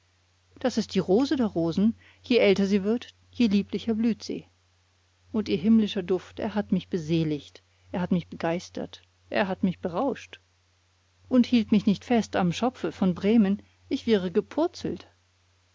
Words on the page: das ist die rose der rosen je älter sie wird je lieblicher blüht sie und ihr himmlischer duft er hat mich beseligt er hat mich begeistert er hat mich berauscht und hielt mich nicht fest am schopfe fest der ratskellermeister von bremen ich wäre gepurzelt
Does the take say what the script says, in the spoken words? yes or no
no